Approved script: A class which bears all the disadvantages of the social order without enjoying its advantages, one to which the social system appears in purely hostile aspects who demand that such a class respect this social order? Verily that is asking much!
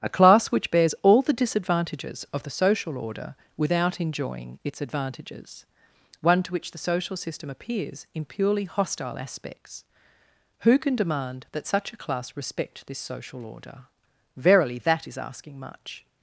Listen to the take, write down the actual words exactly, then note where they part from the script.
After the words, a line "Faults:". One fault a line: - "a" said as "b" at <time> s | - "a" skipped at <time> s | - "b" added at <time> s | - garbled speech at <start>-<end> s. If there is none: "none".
A class which bears all the disadvantages of the social order without enjoying its advantages, one to which the social system appears in purely hostile aspects who can demand that such a class respect this social order? Verily that is asking much!
Faults:
- "can" added at 10.8 s